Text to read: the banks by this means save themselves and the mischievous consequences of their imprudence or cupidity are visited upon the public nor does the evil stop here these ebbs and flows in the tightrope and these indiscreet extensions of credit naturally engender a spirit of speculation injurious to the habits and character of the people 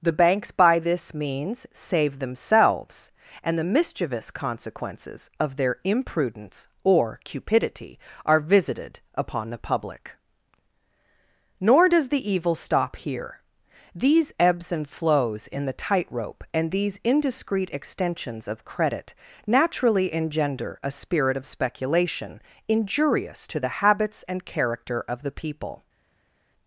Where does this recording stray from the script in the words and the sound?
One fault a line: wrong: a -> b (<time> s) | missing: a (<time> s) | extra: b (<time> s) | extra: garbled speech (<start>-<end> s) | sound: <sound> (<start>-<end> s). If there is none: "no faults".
no faults